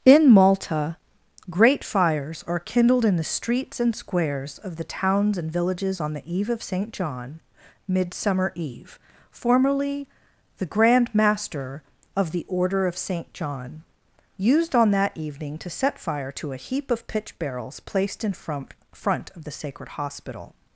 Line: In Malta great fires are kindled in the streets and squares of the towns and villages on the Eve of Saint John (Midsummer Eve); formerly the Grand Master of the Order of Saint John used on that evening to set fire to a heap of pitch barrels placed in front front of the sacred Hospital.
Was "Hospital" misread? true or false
false